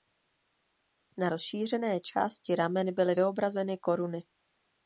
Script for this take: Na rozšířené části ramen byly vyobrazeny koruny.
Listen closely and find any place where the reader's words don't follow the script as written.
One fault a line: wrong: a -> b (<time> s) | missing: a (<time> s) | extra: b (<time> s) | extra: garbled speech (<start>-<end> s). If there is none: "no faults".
no faults